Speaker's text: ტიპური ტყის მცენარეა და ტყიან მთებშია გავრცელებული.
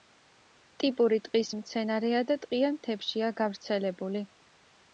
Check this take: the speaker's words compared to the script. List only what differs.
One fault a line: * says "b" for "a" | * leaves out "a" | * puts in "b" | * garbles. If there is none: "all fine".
all fine